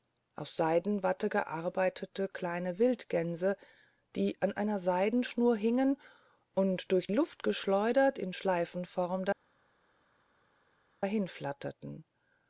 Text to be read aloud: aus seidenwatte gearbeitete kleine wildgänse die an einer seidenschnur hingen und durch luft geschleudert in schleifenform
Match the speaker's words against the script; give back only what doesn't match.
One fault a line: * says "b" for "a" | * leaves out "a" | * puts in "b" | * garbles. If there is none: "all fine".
all fine